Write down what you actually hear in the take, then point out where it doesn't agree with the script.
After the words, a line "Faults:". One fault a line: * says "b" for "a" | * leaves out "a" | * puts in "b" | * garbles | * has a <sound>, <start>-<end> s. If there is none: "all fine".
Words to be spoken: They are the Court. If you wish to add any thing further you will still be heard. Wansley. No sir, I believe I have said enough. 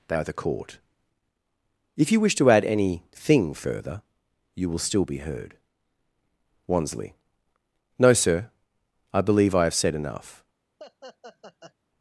They are the Court. If you wish to add any thing further you will still be heard. Wansley. No sir, I believe I have said enough.
Faults:
* has a laugh, 10.8-11.7 s